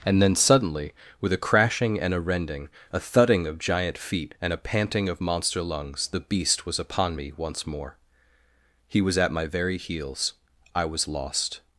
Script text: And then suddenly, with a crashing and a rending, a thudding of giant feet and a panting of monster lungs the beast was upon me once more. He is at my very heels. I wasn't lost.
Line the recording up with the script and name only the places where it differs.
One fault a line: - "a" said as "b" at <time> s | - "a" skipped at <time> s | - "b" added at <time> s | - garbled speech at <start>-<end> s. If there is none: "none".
- "is" said as "was" at 9.0 s
- "wasn't" said as "was" at 10.9 s